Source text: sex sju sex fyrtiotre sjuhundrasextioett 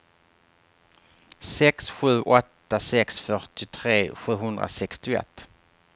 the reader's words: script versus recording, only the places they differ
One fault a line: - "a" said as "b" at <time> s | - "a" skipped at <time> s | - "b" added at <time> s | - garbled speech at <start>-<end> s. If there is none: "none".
- "åtta" added at 2.2 s